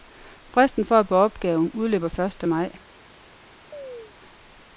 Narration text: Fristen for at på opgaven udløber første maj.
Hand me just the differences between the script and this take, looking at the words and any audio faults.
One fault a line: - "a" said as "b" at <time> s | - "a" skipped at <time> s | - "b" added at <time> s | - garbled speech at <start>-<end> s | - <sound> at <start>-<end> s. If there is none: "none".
- chirp at 3.7-4.1 s